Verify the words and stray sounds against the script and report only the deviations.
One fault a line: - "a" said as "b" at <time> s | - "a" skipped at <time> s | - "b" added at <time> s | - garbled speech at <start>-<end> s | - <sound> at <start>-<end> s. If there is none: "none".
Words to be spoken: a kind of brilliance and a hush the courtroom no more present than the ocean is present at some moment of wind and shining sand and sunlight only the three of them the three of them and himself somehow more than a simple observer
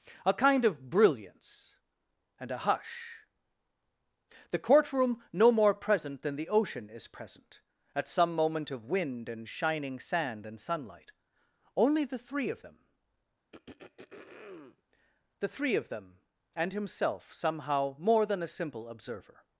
- throat clearing at 13.5-14.8 s